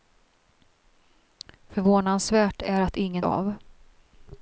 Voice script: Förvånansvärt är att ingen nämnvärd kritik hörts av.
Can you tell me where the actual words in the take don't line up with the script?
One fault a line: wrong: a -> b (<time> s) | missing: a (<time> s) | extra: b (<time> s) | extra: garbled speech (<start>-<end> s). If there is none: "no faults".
missing: nämnvärd kritik hörts (3.2 s)